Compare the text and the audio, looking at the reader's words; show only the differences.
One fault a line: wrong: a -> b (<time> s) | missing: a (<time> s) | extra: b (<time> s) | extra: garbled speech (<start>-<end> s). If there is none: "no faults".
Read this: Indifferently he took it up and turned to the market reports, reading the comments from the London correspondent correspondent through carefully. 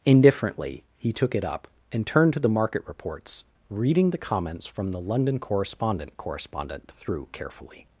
no faults